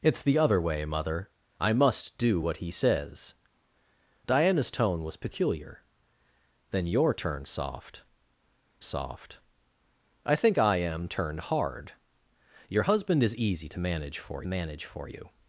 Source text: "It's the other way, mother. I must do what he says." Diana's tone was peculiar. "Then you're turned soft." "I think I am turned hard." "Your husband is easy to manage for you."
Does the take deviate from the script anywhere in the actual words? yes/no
yes